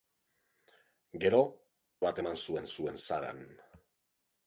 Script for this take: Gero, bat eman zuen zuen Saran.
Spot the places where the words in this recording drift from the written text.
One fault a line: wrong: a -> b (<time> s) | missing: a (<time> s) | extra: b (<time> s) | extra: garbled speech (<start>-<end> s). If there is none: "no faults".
no faults